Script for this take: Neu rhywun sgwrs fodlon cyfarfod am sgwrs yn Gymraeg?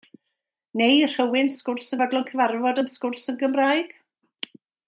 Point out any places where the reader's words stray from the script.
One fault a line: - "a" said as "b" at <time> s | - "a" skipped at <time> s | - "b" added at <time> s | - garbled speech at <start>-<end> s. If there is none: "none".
none